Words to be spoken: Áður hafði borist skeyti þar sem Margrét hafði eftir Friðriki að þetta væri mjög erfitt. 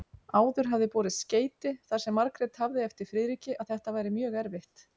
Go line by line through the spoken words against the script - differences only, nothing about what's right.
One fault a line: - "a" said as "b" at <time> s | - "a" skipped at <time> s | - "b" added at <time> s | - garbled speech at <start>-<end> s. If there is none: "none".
none